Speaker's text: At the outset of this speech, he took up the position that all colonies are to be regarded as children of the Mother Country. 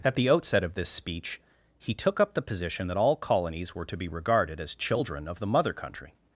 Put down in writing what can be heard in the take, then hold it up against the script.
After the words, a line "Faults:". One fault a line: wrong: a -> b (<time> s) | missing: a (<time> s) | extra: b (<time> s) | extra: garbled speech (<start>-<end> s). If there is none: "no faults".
At the outset of this speech, he took up the position that all colonies were to be regarded as children of the Mother Country.
Faults:
wrong: are -> were (3.8 s)